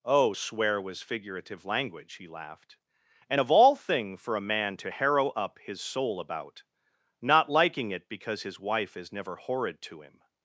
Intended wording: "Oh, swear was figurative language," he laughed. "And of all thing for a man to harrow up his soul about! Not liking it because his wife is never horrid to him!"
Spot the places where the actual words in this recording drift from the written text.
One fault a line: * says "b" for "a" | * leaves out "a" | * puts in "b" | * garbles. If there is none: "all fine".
all fine